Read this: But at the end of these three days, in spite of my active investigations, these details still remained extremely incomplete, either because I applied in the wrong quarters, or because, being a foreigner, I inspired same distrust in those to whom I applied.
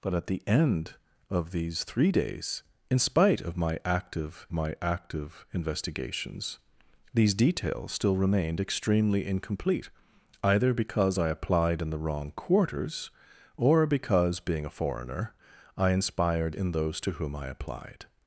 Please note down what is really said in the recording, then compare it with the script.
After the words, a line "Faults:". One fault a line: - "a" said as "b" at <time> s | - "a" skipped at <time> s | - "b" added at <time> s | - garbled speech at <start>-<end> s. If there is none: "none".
But at the end of these three days, in spite of my active my active investigations, these details still remained extremely incomplete, either because I applied in the wrong quarters, or because, being a foreigner, I inspired in those to whom I applied.
Faults:
- "my active" added at 4.5 s
- "same distrust" skipped at 16.5 s